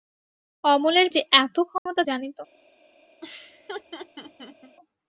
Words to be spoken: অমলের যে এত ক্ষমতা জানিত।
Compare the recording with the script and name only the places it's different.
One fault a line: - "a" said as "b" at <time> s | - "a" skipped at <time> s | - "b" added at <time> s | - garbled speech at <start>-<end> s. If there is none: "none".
none